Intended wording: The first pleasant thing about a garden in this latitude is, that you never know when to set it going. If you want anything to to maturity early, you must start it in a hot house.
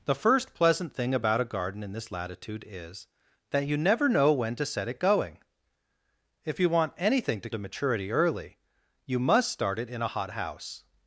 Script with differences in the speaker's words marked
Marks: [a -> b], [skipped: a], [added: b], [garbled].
The first pleasant thing about a garden in this latitude is, that you never know when to set it going. If you want anything to to maturity early, you must start it in a hot house.